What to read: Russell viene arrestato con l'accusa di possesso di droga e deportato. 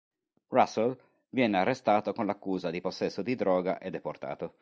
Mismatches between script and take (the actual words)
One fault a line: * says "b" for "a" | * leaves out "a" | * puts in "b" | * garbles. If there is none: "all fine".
all fine